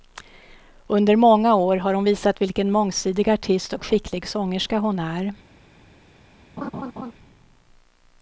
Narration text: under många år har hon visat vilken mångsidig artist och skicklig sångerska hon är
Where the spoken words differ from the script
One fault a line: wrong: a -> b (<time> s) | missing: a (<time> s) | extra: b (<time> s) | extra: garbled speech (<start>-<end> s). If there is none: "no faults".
no faults